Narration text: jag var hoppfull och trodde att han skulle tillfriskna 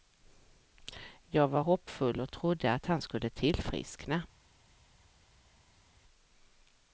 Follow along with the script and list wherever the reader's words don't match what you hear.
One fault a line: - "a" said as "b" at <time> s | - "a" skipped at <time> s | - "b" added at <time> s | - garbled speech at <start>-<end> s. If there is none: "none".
none